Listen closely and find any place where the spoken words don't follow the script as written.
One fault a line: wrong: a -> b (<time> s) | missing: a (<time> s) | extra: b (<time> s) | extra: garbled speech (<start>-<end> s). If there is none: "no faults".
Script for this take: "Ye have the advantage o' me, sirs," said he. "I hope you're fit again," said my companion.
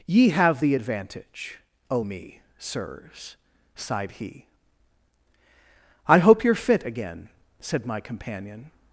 wrong: said -> sighed (3.8 s)